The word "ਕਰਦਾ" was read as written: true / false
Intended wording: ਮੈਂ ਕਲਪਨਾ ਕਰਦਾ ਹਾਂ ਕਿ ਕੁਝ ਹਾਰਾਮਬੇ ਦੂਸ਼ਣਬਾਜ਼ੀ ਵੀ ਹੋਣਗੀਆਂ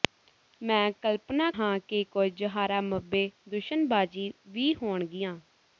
false